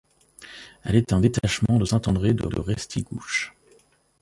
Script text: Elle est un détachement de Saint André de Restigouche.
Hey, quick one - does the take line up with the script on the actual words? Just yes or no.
no